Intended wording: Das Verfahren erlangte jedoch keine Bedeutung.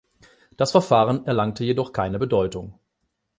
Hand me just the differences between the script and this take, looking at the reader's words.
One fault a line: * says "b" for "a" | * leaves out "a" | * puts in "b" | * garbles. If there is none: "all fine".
all fine